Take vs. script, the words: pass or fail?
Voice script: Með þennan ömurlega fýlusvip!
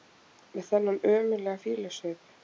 pass